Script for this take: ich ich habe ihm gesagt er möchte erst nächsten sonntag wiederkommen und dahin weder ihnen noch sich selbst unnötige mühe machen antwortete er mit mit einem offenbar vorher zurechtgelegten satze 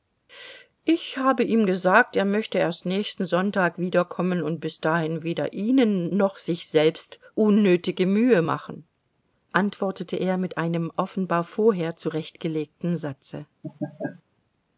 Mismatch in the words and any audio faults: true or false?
true